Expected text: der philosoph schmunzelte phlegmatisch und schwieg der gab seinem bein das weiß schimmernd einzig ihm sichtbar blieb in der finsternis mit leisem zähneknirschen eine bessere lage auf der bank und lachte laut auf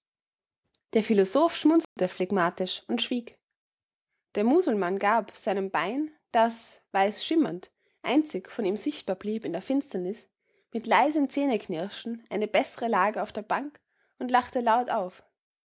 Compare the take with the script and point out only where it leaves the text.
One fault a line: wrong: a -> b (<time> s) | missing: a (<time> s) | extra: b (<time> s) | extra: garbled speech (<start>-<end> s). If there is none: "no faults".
extra: musulmann (4.4 s)
extra: von (8.5 s)